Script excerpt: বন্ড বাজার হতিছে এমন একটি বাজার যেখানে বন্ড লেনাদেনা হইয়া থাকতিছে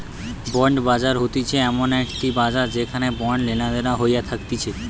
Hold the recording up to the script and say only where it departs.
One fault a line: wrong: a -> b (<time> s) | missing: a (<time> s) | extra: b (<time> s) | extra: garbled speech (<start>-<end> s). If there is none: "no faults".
no faults